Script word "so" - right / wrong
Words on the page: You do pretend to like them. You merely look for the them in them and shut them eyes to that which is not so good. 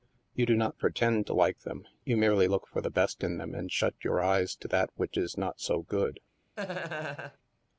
right